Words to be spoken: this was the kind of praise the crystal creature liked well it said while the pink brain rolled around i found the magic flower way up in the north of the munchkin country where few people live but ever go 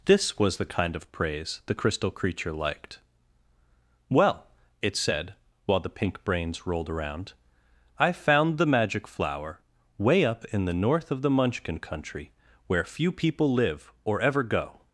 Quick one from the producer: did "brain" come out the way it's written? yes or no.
no